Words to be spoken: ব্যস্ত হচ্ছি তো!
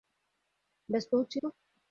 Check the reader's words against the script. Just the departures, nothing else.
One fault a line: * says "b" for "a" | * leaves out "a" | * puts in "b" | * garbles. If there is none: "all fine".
all fine